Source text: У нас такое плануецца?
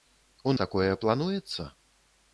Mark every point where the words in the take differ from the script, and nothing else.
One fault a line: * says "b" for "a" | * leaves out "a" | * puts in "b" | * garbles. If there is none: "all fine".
* leaves out "нас"